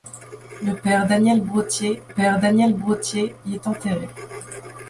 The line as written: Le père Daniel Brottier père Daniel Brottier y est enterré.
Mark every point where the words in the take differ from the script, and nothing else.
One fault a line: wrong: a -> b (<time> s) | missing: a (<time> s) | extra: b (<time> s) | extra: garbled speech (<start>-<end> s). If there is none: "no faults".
no faults